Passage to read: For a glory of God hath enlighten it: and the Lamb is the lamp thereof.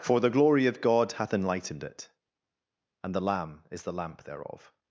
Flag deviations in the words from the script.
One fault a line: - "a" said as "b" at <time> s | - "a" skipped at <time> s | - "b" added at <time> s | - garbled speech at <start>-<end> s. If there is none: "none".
- "a" said as "the" at 0.2 s
- "enlighten" said as "enlightened" at 1.3 s